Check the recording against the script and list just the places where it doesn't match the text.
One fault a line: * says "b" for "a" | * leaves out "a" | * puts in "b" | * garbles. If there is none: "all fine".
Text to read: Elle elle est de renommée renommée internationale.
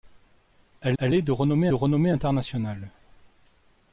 all fine